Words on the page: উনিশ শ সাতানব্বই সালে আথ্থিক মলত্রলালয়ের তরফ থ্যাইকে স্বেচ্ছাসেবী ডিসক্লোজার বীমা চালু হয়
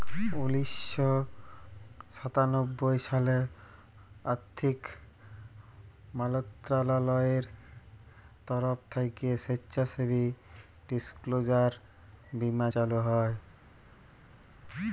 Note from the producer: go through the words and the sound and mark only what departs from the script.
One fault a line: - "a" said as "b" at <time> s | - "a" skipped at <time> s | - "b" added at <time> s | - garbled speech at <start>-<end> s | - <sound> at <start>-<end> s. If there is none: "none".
none